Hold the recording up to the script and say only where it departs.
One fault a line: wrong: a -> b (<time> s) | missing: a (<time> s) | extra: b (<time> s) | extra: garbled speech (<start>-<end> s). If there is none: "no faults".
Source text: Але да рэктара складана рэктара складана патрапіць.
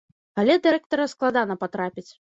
missing: рэктара складана (1.6 s)